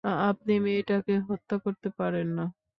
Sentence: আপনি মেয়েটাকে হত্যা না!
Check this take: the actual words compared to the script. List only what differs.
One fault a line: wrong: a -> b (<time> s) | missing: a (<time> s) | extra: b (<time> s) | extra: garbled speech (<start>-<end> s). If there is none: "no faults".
extra: করতে পারেন (1.6 s)